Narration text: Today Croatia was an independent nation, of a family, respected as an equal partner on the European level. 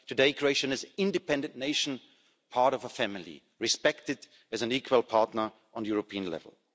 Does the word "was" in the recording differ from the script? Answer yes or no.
yes